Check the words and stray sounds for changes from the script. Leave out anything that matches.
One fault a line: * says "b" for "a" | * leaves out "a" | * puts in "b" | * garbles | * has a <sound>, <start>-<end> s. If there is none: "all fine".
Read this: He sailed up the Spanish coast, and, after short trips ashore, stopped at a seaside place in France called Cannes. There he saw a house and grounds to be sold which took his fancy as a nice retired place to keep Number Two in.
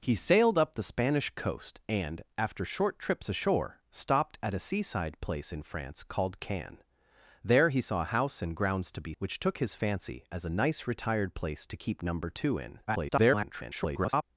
* leaves out "sold"
* garbles